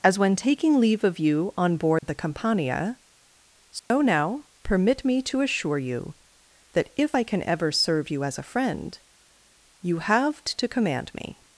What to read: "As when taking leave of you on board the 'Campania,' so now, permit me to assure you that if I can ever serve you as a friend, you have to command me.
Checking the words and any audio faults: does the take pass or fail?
fail